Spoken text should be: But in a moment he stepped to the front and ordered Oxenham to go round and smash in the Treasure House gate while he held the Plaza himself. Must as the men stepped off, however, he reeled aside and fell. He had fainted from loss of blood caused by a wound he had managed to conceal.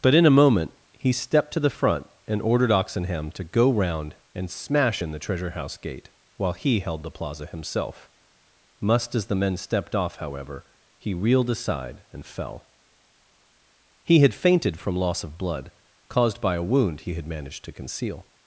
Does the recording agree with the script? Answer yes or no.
yes